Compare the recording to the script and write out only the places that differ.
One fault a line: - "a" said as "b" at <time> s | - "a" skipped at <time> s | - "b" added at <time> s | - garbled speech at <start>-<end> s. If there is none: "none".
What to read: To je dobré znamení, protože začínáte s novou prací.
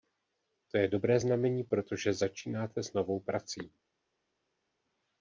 none